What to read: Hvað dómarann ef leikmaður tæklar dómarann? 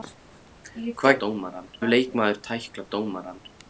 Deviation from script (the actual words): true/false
false